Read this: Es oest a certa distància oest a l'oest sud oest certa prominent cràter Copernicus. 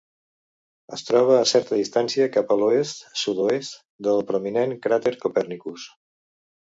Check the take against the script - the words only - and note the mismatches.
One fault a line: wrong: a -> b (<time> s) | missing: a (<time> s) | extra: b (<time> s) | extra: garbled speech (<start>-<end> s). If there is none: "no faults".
wrong: oest -> troba (1.1 s)
wrong: oest -> cap (2.4 s)
wrong: certa -> del (4.1 s)